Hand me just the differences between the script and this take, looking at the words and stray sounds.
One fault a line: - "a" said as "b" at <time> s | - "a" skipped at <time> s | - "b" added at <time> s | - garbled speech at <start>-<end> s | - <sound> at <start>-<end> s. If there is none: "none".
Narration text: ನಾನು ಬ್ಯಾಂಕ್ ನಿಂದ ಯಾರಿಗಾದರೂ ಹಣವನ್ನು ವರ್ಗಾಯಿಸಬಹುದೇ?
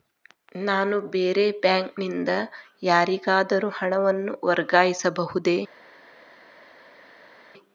- "ಬೇರೆ" added at 1.1 s